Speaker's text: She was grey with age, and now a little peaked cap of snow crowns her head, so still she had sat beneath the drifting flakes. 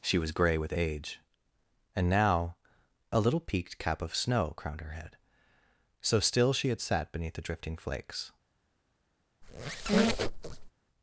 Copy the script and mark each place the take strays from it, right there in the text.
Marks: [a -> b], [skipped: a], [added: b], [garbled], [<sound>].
She was grey with age, and now a little peaked cap of snow [crowns -> crowned] her head, so still she had sat beneath the drifting flakes. [squeak]